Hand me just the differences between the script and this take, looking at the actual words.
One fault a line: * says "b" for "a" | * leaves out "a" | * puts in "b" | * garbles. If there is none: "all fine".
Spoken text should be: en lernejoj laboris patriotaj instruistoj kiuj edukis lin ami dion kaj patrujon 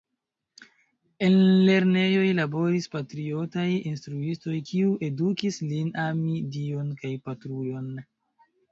all fine